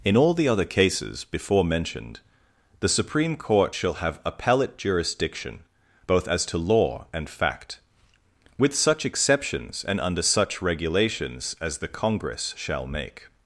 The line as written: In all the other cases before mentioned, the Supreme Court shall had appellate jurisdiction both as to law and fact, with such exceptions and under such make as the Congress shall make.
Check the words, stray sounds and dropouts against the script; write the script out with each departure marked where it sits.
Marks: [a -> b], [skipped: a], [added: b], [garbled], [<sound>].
In all the other cases before mentioned, the Supreme Court shall [had -> have] appellate jurisdiction both as to law and fact, with such exceptions and under such [make -> regulations] as the Congress shall make.